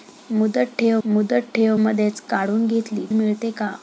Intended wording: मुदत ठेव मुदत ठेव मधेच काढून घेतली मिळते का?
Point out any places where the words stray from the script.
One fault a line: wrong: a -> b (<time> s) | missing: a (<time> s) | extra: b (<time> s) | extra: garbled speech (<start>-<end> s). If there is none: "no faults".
no faults